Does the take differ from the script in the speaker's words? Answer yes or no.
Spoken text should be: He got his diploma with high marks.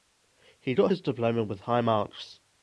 no